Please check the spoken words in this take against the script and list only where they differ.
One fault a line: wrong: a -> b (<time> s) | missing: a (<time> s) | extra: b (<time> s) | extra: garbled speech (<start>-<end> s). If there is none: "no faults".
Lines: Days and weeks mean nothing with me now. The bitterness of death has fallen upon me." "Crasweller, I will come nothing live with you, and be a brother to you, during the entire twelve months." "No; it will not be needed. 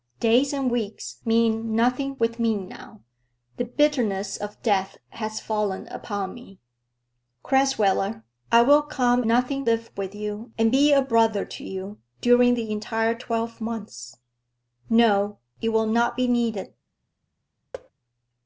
no faults